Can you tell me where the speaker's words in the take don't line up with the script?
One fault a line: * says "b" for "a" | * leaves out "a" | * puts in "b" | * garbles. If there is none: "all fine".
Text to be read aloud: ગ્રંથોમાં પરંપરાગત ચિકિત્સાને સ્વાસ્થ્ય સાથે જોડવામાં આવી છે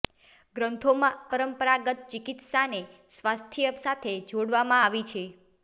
all fine